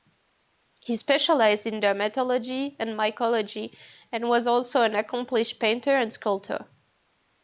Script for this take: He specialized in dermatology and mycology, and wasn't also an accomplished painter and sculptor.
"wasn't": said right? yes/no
no